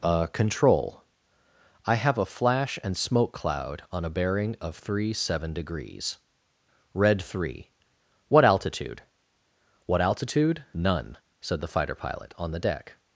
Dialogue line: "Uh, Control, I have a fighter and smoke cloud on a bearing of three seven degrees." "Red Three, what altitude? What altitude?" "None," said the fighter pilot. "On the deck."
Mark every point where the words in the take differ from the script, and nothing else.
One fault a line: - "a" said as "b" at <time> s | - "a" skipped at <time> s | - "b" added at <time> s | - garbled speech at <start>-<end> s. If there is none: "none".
- "fighter" said as "flash" at 2.2 s